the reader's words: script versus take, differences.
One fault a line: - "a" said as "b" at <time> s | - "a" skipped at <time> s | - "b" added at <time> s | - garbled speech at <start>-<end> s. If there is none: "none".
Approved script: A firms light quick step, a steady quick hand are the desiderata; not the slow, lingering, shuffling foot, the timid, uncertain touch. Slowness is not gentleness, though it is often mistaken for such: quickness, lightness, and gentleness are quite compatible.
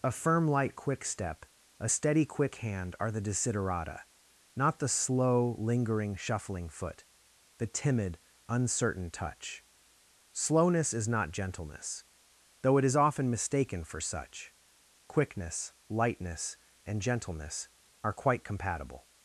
- "firms" said as "firm" at 0.1 s